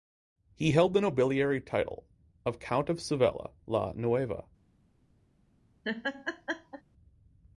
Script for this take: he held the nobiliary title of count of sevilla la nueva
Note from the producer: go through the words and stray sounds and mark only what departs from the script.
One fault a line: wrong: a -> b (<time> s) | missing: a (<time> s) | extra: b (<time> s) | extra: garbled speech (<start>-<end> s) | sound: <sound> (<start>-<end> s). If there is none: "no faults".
sound: laugh (5.8-6.8 s)